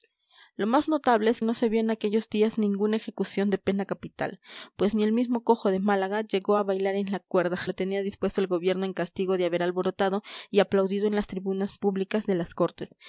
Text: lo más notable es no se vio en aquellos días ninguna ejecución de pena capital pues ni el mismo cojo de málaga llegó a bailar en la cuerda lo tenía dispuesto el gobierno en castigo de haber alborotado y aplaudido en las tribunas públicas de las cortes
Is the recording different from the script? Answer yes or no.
no